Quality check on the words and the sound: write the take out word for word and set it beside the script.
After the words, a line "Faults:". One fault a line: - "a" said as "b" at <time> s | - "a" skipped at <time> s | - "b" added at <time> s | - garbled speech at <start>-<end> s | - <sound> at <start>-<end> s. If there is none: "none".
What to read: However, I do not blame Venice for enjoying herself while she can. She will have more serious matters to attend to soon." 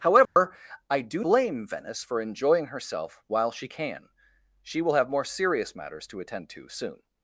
However, I do blame Venice for enjoying herself while she can. She will have more serious matters to attend to soon."
Faults:
- dropout at 0.2-0.4 s
- "not" skipped at 1.2 s